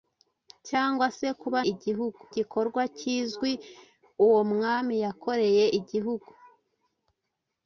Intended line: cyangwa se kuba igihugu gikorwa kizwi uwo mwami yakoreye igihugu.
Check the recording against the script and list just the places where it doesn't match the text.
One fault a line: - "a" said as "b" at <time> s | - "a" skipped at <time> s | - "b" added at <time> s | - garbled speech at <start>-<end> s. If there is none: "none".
none